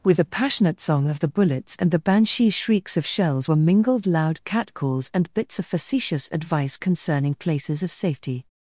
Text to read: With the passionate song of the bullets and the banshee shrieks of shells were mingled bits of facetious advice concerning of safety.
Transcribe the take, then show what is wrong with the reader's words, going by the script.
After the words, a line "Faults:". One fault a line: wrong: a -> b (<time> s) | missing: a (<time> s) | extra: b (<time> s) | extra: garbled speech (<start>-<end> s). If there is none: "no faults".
With the passionate song of the bullets and the banshee shrieks of shells were mingled loud catcalls and bits of facetious advice concerning places of safety.
Faults:
extra: loud catcalls and (4.1 s)
extra: places (7.3 s)